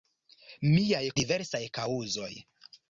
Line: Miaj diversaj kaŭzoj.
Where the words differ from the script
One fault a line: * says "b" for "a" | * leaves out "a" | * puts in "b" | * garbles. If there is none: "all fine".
all fine